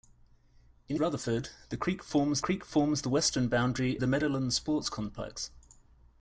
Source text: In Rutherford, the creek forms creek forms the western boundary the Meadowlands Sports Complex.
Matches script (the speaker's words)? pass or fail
pass